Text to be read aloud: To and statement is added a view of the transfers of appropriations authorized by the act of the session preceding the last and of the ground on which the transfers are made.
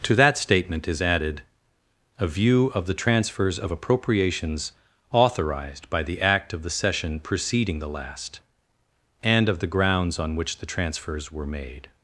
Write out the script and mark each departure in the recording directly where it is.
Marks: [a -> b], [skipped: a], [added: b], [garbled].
To [and -> that] statement is added a view of the transfers of appropriations authorized by the act of the session preceding the last and of the [ground -> grounds] on which the transfers [are -> were] made.